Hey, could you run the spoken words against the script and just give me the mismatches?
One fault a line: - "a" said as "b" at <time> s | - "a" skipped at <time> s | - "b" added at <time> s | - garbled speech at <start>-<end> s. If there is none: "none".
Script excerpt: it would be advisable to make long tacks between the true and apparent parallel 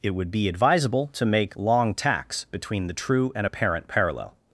none